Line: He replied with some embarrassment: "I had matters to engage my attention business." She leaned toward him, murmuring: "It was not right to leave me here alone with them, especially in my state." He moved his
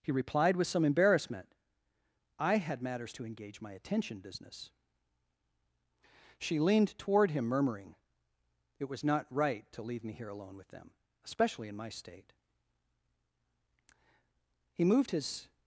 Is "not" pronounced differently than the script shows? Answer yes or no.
no